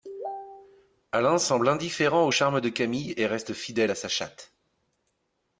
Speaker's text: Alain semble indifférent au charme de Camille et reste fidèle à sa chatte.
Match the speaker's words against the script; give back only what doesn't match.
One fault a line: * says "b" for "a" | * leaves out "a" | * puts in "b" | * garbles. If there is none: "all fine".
all fine